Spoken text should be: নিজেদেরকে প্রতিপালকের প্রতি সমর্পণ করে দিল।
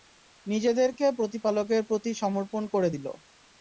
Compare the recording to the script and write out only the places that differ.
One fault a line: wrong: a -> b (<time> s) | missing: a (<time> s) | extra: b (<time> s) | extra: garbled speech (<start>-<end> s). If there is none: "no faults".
no faults